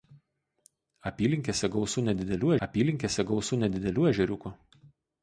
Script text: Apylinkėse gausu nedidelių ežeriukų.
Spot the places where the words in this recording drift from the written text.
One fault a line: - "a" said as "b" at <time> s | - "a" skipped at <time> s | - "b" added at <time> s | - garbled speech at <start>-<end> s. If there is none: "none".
- "apylinkėse gausu nedidelių" added at 2.7 s